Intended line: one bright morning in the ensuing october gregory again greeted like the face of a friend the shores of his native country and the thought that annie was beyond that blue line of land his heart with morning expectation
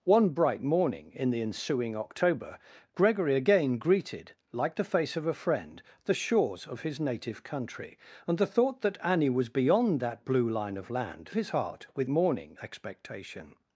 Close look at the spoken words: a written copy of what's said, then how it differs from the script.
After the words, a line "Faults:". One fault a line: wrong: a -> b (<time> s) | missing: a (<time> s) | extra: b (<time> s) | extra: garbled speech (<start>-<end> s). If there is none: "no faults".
one bright morning in the ensuing october gregory again greeted like the face of a friend the shores of his native country and the thought that annie was beyond that blue line of land his heart with morning expectation
Faults:
no faults